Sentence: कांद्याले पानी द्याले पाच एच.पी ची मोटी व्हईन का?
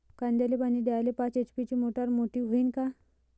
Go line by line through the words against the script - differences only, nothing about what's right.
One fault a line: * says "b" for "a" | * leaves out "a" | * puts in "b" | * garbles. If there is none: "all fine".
* puts in "मोटार"